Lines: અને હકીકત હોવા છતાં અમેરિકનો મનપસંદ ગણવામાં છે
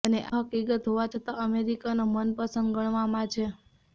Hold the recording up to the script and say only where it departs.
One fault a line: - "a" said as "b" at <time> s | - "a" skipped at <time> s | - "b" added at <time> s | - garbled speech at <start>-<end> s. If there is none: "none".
none